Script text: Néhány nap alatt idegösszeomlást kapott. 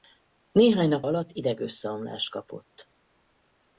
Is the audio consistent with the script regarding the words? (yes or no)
yes